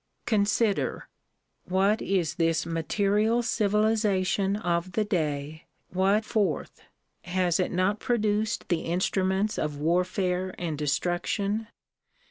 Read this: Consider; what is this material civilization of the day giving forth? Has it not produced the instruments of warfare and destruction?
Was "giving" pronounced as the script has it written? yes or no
no